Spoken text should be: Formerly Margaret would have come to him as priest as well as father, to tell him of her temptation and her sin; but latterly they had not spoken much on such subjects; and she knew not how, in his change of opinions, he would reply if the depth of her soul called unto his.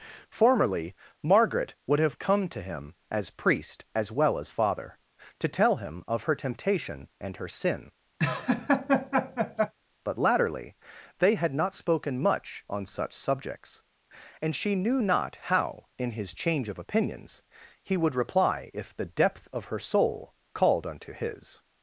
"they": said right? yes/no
yes